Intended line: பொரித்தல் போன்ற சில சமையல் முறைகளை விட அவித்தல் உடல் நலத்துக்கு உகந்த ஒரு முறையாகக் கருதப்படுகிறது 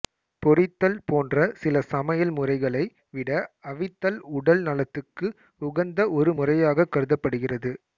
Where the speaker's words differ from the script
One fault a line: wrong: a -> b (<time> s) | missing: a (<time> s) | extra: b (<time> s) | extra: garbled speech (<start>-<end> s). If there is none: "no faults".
no faults